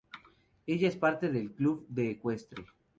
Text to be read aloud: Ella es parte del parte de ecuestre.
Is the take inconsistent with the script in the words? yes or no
yes